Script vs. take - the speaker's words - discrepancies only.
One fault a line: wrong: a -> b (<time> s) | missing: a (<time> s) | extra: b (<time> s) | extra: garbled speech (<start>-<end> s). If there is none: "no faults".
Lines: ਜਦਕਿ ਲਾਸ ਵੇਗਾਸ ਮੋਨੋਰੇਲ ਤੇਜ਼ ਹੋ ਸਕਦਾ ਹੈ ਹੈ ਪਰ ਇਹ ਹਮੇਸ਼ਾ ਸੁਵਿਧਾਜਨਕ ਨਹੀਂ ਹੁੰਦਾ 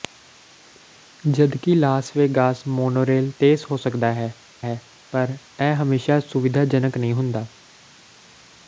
no faults